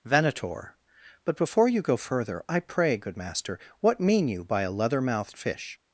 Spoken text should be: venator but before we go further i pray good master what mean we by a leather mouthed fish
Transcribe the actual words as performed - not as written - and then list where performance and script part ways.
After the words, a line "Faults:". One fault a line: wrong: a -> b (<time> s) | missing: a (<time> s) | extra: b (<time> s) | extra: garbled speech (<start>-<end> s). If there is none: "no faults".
venator but before you go further i pray good master what mean you by a leather mouthed fish
Faults:
wrong: we -> you (1.7 s)
wrong: we -> you (4.3 s)